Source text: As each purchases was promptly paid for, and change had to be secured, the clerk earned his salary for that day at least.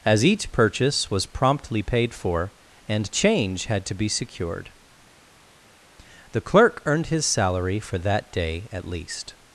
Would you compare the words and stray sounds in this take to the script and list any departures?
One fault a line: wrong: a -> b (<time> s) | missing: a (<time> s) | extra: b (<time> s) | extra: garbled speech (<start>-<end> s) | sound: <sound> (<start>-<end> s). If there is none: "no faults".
wrong: purchases -> purchase (0.5 s)